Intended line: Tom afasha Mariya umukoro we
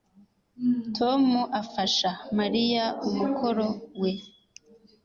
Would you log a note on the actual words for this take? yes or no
no